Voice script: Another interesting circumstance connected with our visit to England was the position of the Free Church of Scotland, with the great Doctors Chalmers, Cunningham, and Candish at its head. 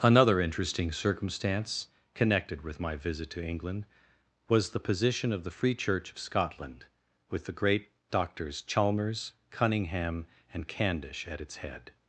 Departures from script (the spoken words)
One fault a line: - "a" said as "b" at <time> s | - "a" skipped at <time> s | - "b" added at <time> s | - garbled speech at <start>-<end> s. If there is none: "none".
- "our" said as "my" at 2.8 s